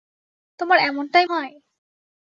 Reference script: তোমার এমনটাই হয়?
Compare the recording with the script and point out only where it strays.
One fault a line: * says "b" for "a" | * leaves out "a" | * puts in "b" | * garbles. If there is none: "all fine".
all fine